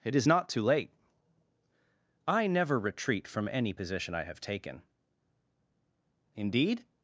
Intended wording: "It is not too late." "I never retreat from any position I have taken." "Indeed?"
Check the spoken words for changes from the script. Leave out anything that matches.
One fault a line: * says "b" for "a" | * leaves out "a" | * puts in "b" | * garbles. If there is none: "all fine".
all fine